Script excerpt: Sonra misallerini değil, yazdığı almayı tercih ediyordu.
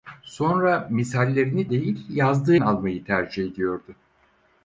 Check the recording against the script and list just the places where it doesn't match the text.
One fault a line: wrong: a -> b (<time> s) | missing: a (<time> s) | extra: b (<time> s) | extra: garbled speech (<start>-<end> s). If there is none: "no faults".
no faults